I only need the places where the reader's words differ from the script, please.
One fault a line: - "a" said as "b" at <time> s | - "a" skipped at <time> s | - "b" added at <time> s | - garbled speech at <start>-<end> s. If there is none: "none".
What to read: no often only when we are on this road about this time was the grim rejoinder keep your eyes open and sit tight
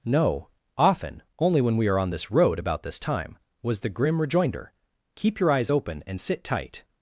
none